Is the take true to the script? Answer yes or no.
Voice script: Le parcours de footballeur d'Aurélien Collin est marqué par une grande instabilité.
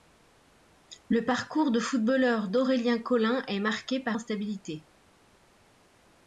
no